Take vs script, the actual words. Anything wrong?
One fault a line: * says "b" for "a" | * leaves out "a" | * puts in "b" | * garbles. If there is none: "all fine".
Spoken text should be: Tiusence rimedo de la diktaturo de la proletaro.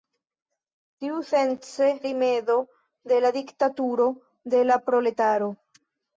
all fine